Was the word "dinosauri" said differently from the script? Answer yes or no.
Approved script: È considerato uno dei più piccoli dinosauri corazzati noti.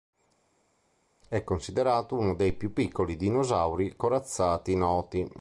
no